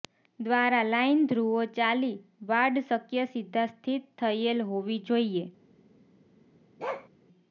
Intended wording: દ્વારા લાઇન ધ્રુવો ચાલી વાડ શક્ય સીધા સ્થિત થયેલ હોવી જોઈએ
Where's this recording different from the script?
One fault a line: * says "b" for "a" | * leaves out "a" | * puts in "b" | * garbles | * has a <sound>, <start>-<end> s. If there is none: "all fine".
* has a bark, 6.8-7.1 s